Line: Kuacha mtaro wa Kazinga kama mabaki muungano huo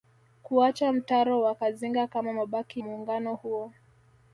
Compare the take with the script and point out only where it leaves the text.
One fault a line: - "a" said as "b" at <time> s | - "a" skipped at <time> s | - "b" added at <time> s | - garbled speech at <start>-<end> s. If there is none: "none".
none